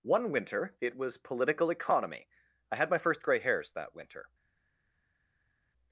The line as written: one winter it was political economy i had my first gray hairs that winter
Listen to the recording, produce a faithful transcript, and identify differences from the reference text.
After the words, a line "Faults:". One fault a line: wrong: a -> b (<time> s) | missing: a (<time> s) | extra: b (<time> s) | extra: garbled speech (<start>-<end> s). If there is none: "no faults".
one winter it was political economy i had my first gray hairs that winter
Faults:
no faults